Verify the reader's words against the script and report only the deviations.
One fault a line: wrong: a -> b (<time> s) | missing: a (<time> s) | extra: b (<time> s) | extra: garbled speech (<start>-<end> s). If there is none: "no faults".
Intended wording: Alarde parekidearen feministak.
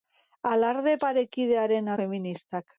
no faults